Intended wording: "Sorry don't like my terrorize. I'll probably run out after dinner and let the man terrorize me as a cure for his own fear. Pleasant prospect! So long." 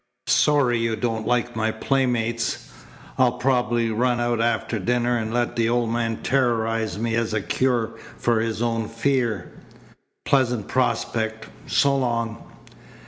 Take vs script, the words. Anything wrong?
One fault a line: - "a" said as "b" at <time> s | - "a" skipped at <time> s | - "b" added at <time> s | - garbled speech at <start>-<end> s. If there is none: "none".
- "you" added at 0.8 s
- "terrorize" said as "playmates" at 1.7 s
- "old" added at 5.7 s